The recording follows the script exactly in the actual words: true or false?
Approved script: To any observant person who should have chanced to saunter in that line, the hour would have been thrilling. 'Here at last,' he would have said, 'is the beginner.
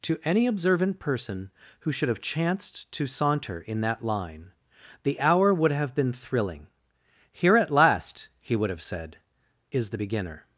true